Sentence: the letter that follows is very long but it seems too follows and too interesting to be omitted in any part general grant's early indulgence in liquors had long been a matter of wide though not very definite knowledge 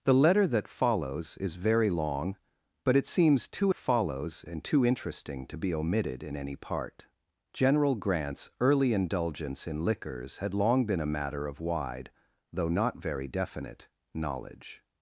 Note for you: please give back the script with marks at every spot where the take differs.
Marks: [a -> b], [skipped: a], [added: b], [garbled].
the letter that follows is very long but it seems too follows and too interesting to be omitted in any part general grant's early indulgence in liquors had long been a matter of wide though not very definite knowledge